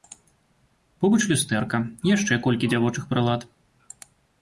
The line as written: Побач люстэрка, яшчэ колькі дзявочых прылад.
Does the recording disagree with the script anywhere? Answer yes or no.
no